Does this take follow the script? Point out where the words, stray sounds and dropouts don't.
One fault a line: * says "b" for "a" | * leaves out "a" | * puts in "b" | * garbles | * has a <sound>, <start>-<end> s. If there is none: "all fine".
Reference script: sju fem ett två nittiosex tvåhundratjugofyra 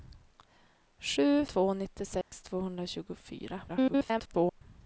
* leaves out "fem ett"
* has a dropout, 2.2-2.3 s
* garbles